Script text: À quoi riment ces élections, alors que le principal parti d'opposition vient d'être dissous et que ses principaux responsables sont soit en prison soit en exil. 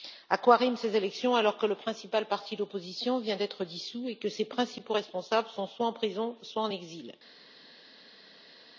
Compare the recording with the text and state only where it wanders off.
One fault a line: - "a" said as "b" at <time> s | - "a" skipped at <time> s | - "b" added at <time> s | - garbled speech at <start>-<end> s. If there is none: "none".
none